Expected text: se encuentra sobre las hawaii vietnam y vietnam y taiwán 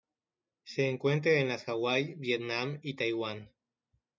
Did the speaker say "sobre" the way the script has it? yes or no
no